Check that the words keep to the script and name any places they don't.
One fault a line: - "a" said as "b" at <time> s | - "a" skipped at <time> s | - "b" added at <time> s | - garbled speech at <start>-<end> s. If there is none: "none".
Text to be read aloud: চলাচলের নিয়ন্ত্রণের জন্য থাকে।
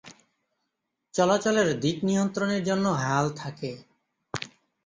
- "দিক" added at 1.8 s
- "হাল" added at 3.0 s